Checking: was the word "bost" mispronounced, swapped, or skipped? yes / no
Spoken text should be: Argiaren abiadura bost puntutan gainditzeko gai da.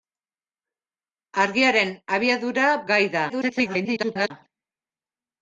yes